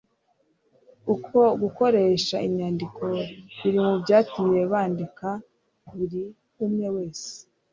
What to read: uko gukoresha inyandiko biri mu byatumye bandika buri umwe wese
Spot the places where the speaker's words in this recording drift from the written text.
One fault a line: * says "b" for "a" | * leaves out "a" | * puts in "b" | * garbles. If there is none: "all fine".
all fine